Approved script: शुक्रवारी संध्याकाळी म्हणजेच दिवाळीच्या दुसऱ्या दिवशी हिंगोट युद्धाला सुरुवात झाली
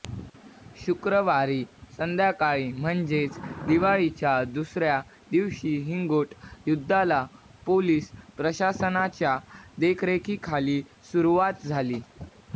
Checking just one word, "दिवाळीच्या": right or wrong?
right